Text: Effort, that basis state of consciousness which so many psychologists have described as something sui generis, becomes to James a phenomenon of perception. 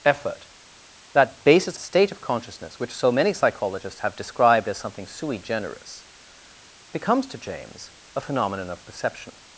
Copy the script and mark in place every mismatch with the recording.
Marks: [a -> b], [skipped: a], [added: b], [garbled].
Effort, that basis state of consciousness which so many psychologists have described as something sui generis, becomes to James a phenomenon of perception.